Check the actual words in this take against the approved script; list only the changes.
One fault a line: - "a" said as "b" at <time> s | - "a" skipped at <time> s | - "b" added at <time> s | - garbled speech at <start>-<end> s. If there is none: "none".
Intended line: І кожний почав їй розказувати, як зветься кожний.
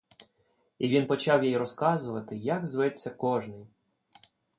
- "кожний" said as "він" at 0.9 s